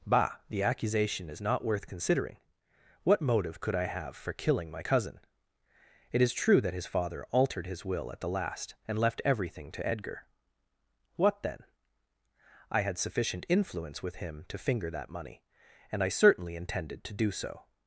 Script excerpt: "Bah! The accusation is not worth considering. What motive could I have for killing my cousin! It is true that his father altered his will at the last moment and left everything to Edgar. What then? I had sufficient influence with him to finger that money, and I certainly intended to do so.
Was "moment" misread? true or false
true